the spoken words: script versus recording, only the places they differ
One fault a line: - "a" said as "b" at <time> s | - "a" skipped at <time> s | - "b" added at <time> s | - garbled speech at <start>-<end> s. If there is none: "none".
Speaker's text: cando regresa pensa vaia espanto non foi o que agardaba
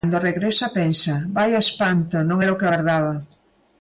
- "foi" said as "era" at 2.4 s